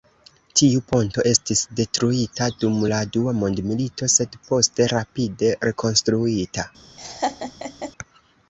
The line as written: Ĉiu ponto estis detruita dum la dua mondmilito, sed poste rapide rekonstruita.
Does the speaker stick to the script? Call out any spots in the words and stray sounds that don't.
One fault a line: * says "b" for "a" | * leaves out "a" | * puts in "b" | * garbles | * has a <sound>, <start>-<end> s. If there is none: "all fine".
* says "Tiu" for "Ĉiu"
* has a laugh, 7.0-7.9 s